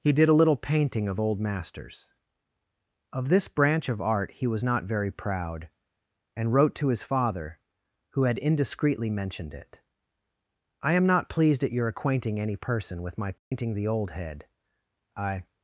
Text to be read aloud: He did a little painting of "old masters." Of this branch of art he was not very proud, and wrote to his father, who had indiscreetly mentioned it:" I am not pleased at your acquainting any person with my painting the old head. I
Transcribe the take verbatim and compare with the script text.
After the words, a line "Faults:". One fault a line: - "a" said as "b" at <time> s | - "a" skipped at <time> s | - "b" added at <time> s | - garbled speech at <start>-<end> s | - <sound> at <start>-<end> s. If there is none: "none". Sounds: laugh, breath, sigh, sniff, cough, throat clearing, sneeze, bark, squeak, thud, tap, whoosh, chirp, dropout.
He did a little painting of "old masters." Of this branch of art he was not very proud, and wrote to his father, who had indiscreetly mentioned it:" I am not pleased at your acquainting any person with my painting the old head. I
Faults:
- dropout at 13.4-13.5 s